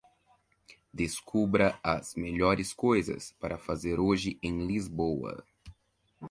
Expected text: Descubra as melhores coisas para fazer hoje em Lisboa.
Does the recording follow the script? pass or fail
pass